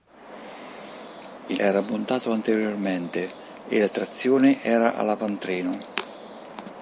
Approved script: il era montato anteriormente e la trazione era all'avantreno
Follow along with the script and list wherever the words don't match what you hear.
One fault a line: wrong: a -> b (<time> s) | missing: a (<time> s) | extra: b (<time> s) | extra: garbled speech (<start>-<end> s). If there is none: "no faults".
no faults